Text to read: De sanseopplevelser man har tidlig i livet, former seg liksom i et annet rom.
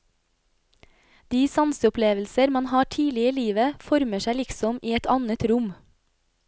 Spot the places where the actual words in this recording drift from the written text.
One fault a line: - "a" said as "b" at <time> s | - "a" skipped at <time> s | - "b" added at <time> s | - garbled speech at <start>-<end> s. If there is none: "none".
none